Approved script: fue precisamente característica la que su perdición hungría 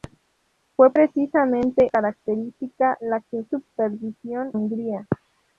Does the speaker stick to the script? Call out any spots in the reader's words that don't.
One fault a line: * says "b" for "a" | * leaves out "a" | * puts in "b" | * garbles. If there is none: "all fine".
all fine